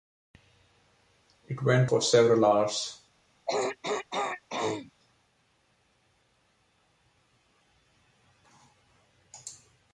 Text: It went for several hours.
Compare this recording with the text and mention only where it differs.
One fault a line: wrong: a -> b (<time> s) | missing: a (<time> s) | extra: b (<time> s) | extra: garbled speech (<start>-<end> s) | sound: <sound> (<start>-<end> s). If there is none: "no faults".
sound: throat clearing (3.5-4.9 s)